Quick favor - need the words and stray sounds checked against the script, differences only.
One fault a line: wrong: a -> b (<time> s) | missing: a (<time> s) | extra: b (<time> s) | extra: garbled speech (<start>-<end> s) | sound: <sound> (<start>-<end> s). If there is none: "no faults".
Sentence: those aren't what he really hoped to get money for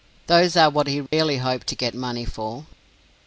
wrong: aren't -> are (0.6 s)
sound: dropout (1.1-1.1 s)